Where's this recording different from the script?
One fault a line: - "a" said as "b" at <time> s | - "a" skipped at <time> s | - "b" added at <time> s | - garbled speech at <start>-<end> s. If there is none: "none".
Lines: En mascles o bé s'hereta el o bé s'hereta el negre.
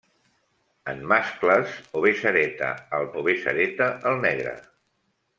none